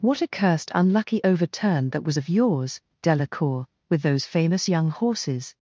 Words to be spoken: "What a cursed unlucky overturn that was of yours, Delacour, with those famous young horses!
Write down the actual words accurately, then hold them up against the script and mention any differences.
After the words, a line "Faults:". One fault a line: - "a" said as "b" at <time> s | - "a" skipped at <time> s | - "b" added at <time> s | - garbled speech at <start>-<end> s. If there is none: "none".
"What a cursed unlucky overturn that was of yours, Delacour, with those famous young horses!
Faults:
none